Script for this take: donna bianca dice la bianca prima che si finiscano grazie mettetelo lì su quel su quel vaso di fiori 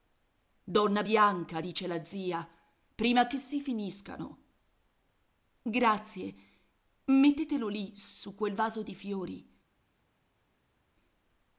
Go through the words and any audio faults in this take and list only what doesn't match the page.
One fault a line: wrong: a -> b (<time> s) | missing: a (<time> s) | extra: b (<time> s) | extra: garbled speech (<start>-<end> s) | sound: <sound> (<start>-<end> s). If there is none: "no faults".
wrong: bianca -> zia (2.0 s)
missing: su quel (8.5 s)